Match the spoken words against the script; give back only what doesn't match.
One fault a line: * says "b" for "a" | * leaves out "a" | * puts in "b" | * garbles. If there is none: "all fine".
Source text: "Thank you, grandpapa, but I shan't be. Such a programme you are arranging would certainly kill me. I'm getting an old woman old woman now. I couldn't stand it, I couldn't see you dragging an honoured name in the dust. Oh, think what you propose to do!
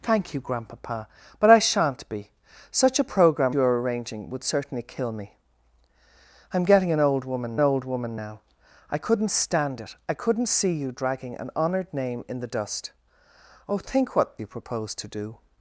all fine